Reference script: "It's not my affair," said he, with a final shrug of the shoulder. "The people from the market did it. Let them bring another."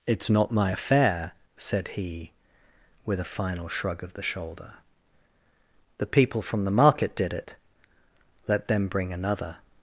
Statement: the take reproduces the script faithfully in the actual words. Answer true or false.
true